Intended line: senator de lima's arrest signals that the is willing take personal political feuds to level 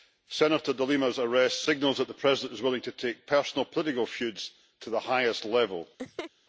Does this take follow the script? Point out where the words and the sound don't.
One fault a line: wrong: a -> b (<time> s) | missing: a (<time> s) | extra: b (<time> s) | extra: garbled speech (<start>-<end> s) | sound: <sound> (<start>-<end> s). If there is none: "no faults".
extra: president (2.1 s)
extra: to (2.8 s)
extra: the highest (4.9 s)
sound: laugh (6.0-6.3 s)